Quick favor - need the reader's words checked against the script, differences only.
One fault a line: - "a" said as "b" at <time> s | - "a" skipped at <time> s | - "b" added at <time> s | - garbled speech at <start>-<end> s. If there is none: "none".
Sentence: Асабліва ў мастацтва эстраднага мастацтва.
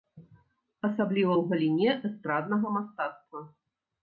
- "мастацтва" said as "галіне" at 1.5 s